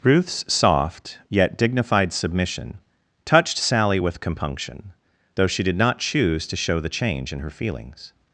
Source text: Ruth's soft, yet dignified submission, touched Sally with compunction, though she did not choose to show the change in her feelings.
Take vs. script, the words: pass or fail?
pass